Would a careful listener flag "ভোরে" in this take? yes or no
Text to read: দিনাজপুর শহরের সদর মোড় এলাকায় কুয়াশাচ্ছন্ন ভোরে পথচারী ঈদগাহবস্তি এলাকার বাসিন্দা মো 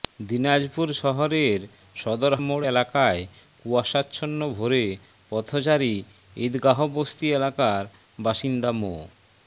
no